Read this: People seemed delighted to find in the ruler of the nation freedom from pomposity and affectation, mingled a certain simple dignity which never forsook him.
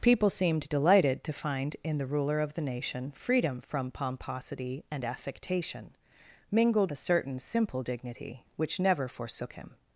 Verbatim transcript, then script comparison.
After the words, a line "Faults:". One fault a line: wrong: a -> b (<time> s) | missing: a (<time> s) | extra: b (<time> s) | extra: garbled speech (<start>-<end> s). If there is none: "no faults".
People seemed delighted to find in the ruler of the nation freedom from pomposity and affectation, mingled a certain simple dignity which never forsook him.
Faults:
no faults